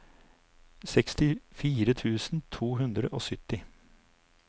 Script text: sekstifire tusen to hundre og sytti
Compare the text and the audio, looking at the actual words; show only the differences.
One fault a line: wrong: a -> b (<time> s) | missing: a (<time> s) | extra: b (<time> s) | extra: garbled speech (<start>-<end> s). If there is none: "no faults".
no faults